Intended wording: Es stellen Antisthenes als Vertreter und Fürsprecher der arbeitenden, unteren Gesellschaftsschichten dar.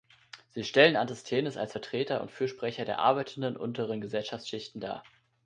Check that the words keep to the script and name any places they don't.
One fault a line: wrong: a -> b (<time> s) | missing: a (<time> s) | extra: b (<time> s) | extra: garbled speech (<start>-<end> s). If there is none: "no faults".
wrong: Es -> Sie (0.5 s)